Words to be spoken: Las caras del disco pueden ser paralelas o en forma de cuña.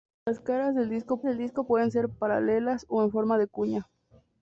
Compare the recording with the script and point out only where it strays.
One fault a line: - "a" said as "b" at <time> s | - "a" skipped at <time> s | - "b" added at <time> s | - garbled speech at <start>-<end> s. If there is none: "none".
- "del disco" added at 1.2 s